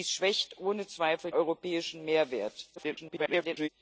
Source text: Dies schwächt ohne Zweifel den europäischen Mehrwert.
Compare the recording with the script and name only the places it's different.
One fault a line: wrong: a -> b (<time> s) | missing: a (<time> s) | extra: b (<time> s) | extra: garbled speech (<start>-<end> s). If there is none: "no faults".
missing: den (1.3 s)
extra: garbled speech (2.8-3.7 s)